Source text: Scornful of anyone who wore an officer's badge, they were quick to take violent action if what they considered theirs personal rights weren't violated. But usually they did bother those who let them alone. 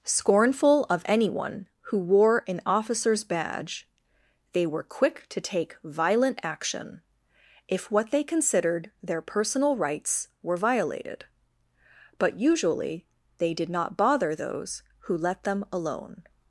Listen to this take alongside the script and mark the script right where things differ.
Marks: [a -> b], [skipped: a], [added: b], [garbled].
Scornful of anyone who wore an officer's badge, they were quick to take violent action if what they considered [theirs -> their] personal rights [weren't -> were] violated. But usually they did [added: not] bother those who let them alone.